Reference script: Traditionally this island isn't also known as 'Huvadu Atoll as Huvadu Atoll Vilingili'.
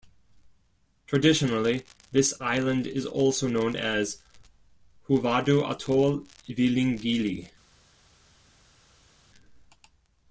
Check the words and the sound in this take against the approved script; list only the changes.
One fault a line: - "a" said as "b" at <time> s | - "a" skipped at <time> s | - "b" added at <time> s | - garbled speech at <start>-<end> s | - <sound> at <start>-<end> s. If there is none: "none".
- "isn't" said as "is" at 2.9 s
- "as Huvadu Atoll" skipped at 6.2 s